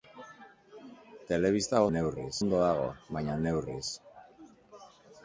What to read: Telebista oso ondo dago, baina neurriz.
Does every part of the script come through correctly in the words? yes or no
no